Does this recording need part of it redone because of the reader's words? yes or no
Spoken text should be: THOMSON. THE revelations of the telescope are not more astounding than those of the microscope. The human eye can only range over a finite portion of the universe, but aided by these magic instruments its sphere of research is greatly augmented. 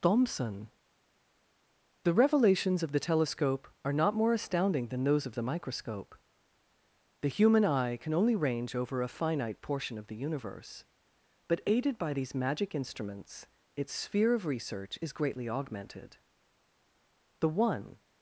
yes